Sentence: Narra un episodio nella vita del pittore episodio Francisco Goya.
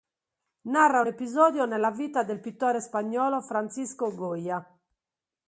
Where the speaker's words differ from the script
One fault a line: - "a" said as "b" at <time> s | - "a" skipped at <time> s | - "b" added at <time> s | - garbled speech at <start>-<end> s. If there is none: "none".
- "episodio" said as "spagnolo" at 2.8 s